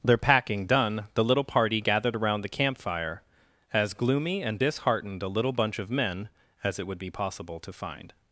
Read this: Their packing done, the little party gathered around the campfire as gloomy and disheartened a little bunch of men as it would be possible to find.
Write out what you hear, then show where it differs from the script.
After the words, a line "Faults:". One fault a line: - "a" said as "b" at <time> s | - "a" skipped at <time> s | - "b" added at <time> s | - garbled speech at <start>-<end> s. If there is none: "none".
Their packing done, the little party gathered around the campfire as gloomy and disheartened a little bunch of men as it would be possible to find.
Faults:
none